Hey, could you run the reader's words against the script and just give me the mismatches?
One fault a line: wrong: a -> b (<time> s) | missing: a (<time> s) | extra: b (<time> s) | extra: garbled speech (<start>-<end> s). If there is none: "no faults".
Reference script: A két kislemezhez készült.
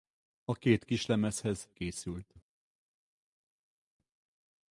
no faults